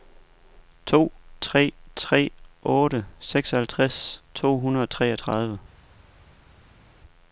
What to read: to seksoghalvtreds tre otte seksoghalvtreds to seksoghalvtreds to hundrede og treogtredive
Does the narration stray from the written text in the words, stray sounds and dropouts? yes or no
yes